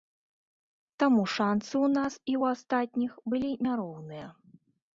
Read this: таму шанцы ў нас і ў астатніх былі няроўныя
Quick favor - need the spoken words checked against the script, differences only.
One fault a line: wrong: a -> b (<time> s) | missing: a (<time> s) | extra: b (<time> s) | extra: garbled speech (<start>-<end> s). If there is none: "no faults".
no faults